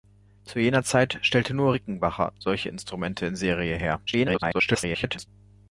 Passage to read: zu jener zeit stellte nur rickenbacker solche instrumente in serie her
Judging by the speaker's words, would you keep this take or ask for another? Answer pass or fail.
fail